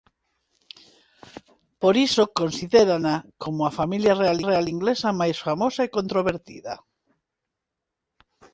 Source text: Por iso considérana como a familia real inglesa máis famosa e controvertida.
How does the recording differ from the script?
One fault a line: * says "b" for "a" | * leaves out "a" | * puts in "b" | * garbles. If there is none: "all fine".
* puts in "real"